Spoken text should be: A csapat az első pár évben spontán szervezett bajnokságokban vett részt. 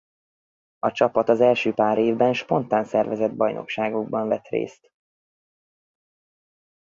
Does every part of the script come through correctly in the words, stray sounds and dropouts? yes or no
yes